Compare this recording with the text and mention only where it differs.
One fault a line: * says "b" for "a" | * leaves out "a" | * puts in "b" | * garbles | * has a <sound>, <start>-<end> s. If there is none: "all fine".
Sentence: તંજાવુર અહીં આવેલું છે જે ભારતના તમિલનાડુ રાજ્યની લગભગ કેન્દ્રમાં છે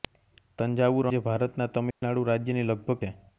* leaves out "અહીં આવેલું છે"
* has a dropout, 1.9-2.0 s
* leaves out "કેન્દ્રમાં"